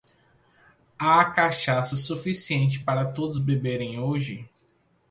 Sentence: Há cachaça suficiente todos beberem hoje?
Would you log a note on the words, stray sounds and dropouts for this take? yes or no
yes